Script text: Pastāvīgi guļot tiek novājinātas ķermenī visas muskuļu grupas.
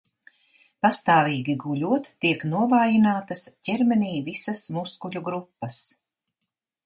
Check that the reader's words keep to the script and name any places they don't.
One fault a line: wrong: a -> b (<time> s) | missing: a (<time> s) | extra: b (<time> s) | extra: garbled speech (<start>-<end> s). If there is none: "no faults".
no faults